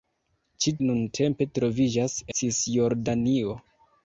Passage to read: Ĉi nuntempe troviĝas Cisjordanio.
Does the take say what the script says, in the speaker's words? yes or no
yes